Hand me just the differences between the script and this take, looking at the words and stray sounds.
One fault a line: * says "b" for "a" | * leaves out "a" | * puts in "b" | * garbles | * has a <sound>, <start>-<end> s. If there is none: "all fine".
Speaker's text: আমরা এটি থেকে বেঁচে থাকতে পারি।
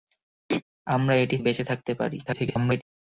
* has a throat clearing, 0.5-0.6 s
* leaves out "থেকে"
* garbles